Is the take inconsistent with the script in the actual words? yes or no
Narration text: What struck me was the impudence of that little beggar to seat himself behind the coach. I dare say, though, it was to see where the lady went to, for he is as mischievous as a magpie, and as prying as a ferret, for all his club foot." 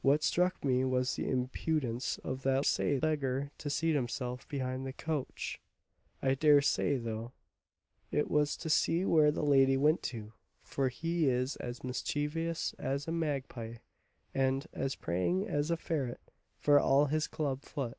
yes